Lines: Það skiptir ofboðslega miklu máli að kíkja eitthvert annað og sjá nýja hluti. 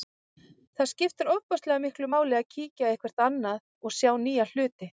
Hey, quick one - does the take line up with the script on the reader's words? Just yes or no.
yes